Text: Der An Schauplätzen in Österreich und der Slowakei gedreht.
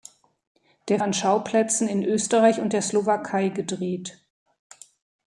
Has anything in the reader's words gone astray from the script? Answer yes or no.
no